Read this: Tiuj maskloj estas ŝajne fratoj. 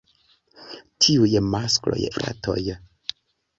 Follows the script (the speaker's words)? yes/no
no